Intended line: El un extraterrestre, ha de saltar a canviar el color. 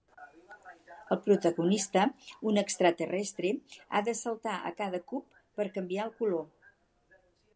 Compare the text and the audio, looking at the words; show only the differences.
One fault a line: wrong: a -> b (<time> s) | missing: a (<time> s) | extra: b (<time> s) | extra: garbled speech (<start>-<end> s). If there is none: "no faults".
extra: protagonista (1.2 s)
extra: cada cub per (4.8 s)